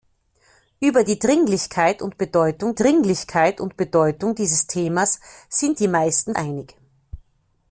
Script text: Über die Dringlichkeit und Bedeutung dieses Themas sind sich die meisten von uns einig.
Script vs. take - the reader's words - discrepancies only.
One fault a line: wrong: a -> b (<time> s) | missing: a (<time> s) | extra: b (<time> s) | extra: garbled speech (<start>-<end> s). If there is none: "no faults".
extra: Dringlichkeit und Bedeutung (2.7 s)
missing: sich (5.8 s)
missing: von uns (6.3 s)